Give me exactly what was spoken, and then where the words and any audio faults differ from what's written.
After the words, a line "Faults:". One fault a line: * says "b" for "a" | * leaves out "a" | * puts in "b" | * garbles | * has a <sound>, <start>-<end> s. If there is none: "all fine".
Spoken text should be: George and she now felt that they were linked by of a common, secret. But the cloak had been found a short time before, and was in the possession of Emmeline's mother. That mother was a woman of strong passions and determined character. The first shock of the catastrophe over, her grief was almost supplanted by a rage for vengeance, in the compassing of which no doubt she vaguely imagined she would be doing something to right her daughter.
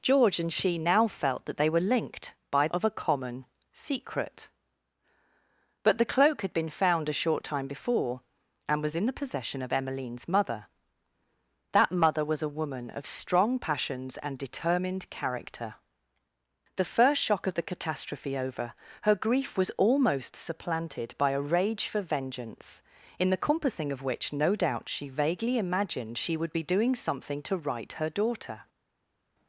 George and she now felt that they were linked by of a common, secret. But the cloak had been found a short time before, and was in the possession of Emmeline's mother. That mother was a woman of strong passions and determined character. The first shock of the catastrophe over, her grief was almost supplanted by a rage for vengeance, in the compassing of which no doubt she vaguely imagined she would be doing something to right her daughter.
Faults:
all fine